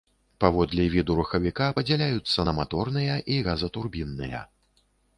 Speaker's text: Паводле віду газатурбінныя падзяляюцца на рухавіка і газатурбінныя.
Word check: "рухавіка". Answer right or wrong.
wrong